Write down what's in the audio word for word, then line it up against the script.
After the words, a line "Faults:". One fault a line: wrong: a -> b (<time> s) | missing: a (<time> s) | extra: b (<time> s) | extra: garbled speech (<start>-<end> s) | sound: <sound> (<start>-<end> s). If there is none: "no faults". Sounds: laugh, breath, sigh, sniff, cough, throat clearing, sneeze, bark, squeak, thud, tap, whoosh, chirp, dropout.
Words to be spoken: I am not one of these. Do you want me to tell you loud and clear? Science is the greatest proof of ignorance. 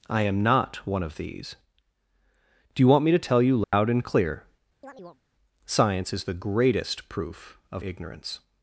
I am not one of these. Do you want me to tell you loud and clear? Science is the greatest proof of ignorance.
Faults:
sound: dropout (3.6-3.7 s)
sound: chirp (4.8-5.2 s)